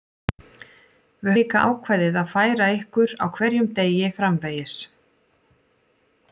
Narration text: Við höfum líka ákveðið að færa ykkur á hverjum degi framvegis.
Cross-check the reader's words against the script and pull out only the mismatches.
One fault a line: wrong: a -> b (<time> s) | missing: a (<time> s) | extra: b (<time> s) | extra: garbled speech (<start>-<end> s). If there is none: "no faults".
missing: höfum (1.4 s)